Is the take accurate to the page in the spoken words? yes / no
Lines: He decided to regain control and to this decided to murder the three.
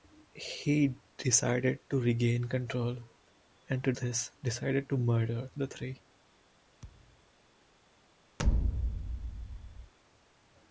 yes